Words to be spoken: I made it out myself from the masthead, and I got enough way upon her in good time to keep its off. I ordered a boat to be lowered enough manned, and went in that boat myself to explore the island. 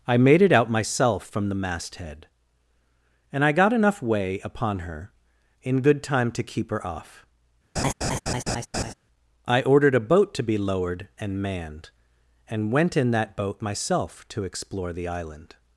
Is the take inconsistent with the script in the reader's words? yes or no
yes